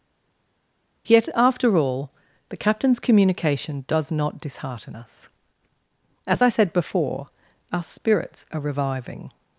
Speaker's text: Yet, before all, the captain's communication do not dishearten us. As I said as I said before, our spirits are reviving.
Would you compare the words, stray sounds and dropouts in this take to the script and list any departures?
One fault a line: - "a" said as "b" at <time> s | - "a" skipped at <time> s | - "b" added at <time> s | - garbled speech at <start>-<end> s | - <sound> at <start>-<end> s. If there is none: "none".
- "before" said as "after" at 1.4 s
- "do" said as "does" at 3.9 s
- "as I said" skipped at 6.7 s